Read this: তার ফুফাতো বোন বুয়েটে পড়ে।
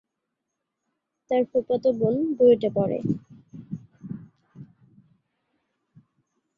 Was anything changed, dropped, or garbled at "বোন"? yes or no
no